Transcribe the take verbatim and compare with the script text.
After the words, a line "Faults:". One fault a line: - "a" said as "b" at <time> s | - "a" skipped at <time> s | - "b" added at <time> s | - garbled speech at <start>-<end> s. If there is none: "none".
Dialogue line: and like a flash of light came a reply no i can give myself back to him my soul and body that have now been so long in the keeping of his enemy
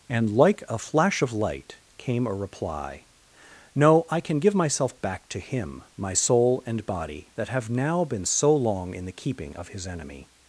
and like a flash of light came a reply no i can give myself back to him my soul and body that have now been so long in the keeping of his enemy
Faults:
none